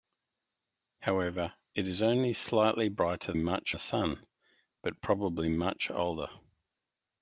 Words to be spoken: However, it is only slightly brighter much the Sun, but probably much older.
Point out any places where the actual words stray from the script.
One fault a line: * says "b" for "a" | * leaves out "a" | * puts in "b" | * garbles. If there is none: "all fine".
all fine